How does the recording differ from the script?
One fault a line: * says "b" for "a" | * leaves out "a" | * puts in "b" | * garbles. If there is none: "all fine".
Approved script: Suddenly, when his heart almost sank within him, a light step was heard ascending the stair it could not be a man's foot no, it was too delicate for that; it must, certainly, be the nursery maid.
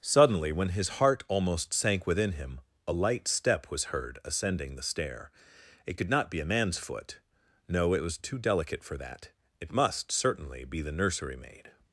all fine